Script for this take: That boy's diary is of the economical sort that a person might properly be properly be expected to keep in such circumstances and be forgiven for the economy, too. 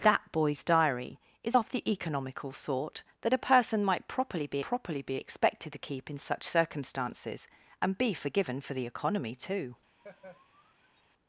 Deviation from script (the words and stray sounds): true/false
true